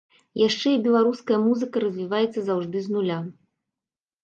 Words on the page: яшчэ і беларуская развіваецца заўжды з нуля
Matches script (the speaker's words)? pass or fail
fail